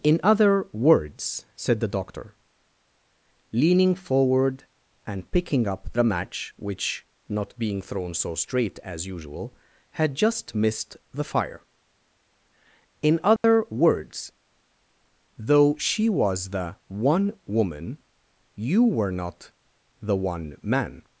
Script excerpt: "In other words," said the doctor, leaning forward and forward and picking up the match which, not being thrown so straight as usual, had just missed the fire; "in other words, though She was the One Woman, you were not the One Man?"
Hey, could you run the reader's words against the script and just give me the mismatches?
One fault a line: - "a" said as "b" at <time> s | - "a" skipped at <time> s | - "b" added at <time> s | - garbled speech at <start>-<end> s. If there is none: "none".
- "forward and" skipped at 5.3 s